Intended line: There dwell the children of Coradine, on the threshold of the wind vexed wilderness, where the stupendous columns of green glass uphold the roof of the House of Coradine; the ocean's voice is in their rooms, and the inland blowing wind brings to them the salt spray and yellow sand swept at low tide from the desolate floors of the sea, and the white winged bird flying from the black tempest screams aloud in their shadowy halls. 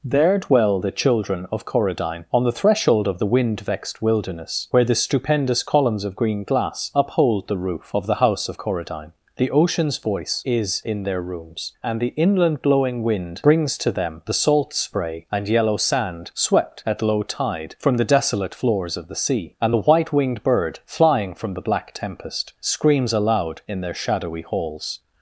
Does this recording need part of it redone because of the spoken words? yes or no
no